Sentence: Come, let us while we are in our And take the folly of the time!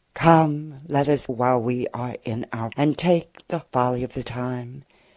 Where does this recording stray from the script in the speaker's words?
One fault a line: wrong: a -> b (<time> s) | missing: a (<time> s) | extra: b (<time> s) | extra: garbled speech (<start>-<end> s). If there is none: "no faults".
no faults